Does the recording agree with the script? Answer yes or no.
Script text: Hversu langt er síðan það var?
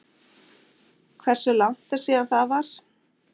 yes